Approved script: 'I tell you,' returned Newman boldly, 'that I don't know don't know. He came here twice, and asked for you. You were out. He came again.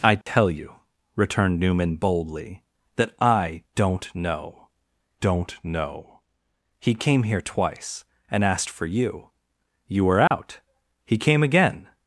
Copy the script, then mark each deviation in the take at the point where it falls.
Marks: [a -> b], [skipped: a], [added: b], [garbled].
'I tell you,' returned Newman boldly, 'that I don't know don't know. He came here twice, and asked for you. You were out. He came again.